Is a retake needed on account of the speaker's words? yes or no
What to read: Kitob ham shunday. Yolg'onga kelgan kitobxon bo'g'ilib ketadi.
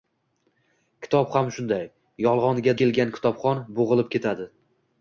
no